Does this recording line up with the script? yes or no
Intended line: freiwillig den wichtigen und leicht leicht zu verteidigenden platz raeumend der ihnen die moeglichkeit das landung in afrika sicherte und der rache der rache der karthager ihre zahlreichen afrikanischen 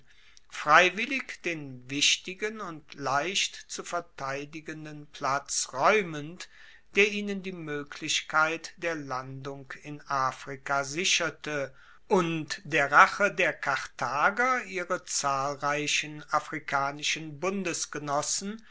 no